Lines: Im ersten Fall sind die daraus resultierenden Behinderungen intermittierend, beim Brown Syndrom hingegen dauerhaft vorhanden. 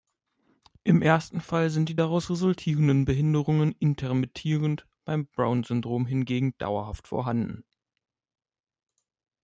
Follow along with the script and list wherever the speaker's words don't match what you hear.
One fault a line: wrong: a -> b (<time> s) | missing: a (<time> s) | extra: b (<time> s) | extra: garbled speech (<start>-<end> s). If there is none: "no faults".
no faults